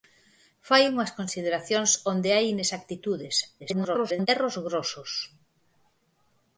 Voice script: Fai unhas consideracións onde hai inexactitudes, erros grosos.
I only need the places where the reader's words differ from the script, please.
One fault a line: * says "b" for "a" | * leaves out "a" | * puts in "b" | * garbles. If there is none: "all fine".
* garbles